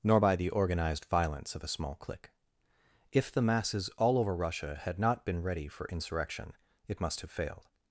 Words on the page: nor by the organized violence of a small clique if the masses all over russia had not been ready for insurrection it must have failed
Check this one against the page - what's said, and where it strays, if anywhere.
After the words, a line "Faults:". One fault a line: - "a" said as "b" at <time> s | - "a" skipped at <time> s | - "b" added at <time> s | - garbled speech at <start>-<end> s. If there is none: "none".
nor by the organized violence of a small clique if the masses all over russia had not been ready for insurrection it must have failed
Faults:
none